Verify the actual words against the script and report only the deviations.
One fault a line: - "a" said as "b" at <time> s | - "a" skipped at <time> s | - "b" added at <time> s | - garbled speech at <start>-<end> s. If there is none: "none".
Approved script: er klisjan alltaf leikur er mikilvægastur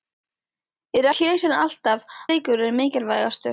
none